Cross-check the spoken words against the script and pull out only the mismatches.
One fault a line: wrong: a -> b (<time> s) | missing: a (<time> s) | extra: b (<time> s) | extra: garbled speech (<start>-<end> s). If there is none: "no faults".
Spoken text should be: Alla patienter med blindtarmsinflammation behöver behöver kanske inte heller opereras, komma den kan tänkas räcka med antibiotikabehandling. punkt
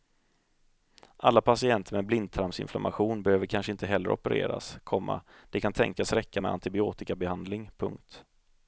missing: behöver (3.5 s)
wrong: den -> det (5.5 s)